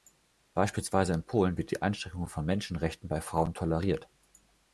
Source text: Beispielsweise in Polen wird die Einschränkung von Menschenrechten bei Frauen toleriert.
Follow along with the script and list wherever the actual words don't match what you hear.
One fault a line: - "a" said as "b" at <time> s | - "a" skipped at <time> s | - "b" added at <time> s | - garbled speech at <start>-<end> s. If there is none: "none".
none